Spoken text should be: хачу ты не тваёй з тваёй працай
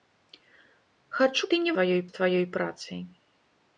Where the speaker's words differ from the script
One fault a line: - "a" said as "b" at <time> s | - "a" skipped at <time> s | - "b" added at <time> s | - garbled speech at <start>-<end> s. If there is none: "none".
none